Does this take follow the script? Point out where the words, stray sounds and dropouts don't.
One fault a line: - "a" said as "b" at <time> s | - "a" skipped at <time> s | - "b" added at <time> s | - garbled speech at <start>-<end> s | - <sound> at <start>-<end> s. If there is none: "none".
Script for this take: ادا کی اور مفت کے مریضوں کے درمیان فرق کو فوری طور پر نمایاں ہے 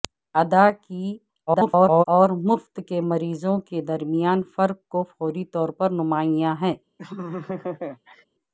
- garbled speech at 1.5-2.0 s
- laugh at 7.0-8.2 s